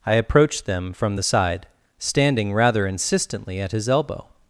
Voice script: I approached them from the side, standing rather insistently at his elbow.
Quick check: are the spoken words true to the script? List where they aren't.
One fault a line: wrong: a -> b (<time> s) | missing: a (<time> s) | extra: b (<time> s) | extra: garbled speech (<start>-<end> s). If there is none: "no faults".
no faults